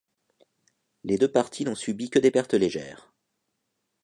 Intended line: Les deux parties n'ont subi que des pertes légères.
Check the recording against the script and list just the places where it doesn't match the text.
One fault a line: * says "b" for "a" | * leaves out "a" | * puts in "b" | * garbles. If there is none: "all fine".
all fine